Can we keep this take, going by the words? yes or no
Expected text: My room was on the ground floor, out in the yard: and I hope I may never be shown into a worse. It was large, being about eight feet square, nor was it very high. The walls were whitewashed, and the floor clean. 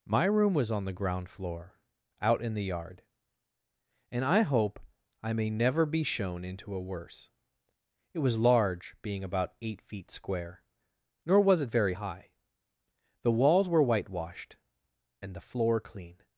yes